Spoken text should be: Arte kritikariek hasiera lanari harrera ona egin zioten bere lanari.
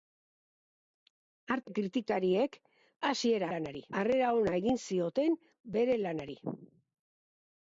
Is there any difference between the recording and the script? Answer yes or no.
no